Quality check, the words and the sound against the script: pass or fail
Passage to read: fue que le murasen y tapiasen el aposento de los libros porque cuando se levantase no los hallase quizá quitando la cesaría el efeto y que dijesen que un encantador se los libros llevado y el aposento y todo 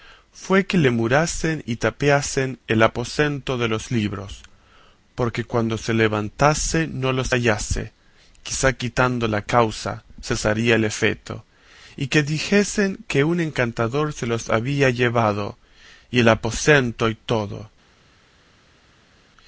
fail